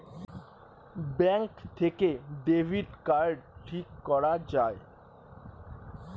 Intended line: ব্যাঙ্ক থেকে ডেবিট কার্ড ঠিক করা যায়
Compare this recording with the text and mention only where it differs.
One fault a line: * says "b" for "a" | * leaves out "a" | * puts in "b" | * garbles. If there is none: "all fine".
all fine